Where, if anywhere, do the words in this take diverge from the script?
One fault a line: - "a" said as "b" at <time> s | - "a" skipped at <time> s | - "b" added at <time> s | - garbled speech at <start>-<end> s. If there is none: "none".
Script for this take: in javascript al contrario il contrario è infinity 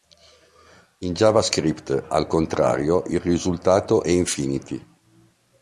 - "contrario" said as "risultato" at 3.2 s